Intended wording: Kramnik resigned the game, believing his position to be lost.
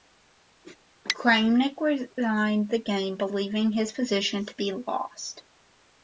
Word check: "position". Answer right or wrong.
right